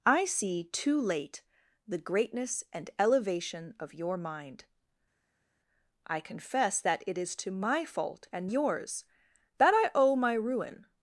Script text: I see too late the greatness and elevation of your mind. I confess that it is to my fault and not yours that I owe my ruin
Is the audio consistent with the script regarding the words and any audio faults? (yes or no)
no